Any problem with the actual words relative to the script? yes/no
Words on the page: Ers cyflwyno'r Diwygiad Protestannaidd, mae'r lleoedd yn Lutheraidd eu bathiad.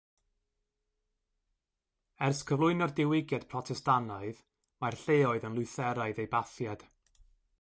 no